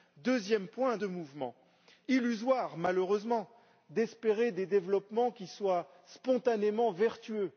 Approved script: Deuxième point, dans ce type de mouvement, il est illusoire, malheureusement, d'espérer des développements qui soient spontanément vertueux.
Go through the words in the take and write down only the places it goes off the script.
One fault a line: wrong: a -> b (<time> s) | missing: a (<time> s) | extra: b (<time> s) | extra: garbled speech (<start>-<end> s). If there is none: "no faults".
missing: dans ce type (1.0 s)
missing: il est (1.5 s)